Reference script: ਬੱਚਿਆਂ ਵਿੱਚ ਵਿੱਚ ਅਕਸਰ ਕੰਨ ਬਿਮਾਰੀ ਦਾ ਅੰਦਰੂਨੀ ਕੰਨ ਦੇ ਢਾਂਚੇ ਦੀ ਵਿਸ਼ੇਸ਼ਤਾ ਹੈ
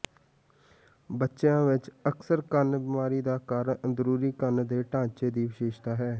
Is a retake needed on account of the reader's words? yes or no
yes